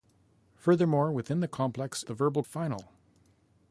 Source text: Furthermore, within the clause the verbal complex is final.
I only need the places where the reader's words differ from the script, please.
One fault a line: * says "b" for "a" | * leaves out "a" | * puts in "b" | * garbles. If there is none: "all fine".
* says "complex" for "clause"
* leaves out "complex is"